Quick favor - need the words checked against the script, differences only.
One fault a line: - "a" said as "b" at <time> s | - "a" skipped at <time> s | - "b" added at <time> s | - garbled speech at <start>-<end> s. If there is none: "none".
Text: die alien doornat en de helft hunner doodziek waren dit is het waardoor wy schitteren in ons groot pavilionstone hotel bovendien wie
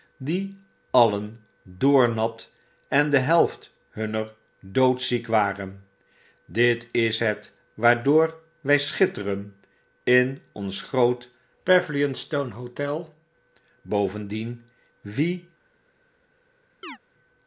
none